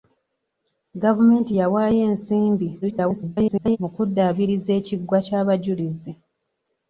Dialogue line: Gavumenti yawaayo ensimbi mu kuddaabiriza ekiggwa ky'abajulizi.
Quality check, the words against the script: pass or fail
fail